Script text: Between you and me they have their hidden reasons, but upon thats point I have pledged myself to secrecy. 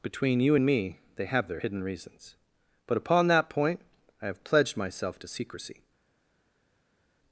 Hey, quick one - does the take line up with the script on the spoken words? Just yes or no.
no